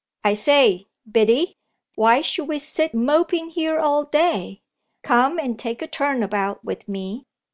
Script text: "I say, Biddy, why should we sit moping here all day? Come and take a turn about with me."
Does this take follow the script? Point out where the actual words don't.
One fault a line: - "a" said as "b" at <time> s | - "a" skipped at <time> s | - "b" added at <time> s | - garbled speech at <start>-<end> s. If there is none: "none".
none